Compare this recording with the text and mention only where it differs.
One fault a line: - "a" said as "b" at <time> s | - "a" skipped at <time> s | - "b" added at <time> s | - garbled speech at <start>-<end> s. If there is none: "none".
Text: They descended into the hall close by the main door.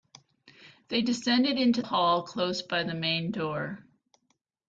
- "the" skipped at 1.8 s